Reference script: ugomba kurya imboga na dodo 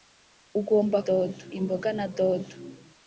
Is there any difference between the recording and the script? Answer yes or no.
yes